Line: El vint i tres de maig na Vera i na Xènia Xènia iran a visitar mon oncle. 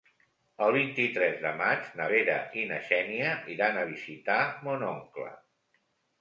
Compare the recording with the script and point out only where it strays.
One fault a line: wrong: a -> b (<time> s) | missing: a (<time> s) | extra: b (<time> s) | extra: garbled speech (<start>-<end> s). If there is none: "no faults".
missing: Xènia (3.3 s)